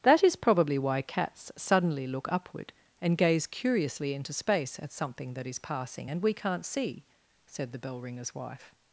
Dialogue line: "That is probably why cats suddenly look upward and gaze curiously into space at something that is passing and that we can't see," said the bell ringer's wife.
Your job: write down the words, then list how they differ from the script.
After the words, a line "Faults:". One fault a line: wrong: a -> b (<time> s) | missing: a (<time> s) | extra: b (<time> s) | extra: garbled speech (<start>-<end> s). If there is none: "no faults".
"That is probably why cats suddenly look upward and gaze curiously into space at something that is passing and we can't see," said the bell ringer's wife.
Faults:
missing: that (6.2 s)